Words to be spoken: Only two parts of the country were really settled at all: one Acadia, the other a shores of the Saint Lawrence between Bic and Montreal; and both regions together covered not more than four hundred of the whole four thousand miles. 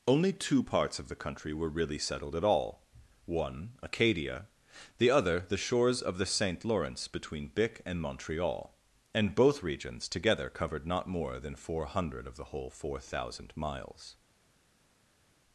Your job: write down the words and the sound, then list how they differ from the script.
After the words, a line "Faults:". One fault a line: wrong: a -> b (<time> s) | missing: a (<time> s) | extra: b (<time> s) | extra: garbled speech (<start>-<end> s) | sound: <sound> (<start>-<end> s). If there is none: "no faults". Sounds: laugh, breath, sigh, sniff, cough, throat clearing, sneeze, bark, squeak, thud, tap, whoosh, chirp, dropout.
Only two parts of the country were really settled at all: one Acadia, the other the shores of the Saint Lawrence between Bic and Montreal; and both regions together covered not more than four hundred of the whole four thousand miles.
Faults:
wrong: a -> the (5.4 s)